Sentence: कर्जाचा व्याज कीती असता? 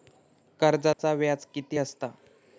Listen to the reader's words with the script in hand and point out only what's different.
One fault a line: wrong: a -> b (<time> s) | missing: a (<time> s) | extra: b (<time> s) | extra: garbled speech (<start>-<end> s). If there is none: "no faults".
no faults